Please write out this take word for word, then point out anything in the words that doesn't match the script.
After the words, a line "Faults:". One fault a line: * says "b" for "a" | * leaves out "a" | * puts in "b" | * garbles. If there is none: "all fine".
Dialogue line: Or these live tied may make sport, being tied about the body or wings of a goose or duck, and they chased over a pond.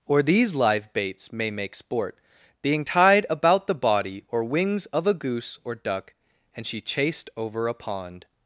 Or these live baits may make sport, being tied about the body or wings of a goose or duck, and she chased over a pond.
Faults:
* says "baits" for "tied"
* says "she" for "they"